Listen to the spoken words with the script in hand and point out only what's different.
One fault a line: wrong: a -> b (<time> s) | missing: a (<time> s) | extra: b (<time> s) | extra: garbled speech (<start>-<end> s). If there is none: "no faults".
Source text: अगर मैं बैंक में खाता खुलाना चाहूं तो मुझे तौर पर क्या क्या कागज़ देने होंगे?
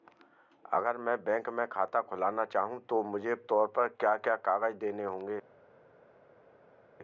no faults